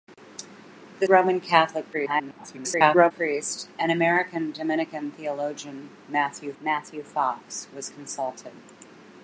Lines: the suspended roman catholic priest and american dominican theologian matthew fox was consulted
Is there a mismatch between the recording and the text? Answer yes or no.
yes